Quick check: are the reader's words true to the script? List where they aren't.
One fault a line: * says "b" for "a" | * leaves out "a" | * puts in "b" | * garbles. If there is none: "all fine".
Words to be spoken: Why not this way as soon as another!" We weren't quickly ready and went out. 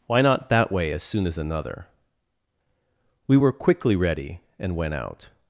* says "that" for "this"
* says "were" for "weren't"